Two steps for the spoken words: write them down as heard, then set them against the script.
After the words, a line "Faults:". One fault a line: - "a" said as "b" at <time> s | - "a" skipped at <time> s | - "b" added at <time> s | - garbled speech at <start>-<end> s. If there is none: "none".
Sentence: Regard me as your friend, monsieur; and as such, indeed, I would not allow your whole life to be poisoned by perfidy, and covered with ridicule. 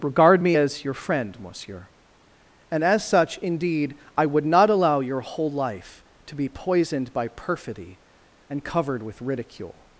Regard me as your friend, monsieur; and as such, indeed, I would not allow your whole life to be poisoned by perfidy, and covered with ridicule.
Faults:
none